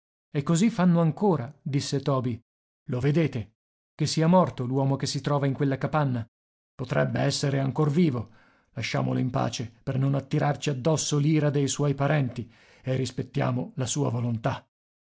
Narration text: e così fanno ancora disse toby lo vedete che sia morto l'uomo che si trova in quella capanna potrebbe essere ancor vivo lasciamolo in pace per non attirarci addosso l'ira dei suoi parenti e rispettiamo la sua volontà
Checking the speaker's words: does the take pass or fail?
pass